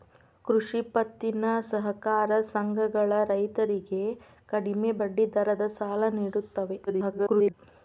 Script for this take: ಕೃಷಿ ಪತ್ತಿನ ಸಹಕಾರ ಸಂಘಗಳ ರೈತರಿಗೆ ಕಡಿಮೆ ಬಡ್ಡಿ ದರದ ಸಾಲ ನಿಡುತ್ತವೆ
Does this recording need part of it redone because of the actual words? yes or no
yes